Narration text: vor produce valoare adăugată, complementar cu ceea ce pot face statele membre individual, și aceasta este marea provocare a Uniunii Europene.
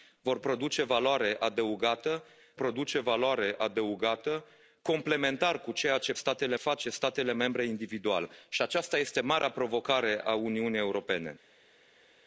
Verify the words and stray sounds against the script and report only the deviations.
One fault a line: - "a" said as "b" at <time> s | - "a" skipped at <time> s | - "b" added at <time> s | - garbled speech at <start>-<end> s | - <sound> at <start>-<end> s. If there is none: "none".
- "produce valoare adăugată" added at 2.5 s
- "pot" said as "statele" at 6.1 s